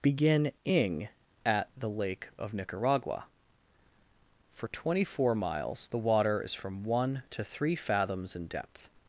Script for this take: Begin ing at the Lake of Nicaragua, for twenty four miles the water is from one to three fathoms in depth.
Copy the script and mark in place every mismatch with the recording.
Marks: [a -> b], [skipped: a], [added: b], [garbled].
Begin ing at the Lake of Nicaragua, for twenty four miles the water is from one to three fathoms in depth.